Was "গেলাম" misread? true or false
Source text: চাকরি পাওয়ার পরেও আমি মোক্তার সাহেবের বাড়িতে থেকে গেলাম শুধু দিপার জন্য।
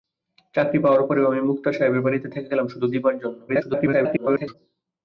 false